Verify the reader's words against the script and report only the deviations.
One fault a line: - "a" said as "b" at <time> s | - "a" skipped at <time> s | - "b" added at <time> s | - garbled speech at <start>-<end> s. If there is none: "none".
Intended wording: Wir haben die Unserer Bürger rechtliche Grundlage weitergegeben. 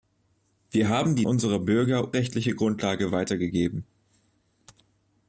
none